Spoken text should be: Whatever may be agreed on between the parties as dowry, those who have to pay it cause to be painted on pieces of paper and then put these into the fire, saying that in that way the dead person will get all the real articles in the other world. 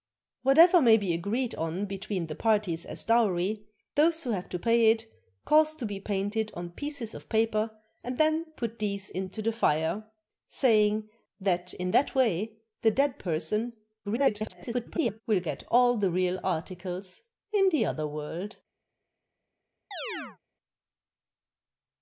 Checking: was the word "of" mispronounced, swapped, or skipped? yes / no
no